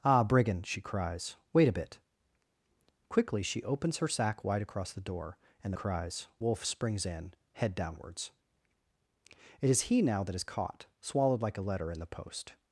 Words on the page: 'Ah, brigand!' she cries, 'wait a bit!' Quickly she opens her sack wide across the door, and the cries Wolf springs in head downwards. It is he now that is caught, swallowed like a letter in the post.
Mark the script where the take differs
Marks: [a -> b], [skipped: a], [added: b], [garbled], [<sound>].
'Ah, brigand!' she cries, 'wait a bit!' Quickly she opens her sack wide across the door, and the cries Wolf springs in head downwards. It is he now that is caught, swallowed like a letter in the post.